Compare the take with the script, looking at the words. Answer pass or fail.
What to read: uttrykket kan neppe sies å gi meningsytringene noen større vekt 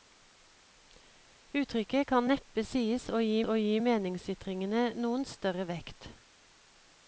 fail